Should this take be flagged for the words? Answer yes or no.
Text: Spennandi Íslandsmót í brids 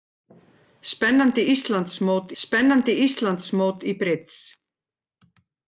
yes